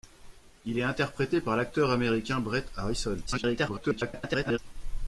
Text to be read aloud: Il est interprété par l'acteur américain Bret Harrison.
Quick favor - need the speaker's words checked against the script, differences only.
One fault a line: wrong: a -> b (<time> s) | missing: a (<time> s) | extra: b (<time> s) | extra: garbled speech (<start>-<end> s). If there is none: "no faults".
extra: garbled speech (3.3-4.6 s)